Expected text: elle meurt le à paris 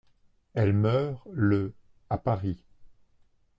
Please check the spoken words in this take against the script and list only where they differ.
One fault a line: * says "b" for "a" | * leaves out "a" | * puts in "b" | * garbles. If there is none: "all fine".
all fine